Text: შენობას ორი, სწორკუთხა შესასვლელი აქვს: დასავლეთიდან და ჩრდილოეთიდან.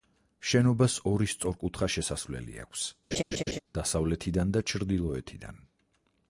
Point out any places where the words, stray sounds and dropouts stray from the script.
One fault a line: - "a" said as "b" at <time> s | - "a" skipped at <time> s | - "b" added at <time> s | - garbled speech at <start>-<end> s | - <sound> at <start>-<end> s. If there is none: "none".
- laugh at 3.1-3.6 s